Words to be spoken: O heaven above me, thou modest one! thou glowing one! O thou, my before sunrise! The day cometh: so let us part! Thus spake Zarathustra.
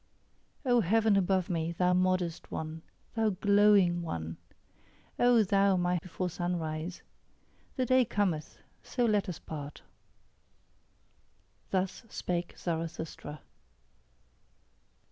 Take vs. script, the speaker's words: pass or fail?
pass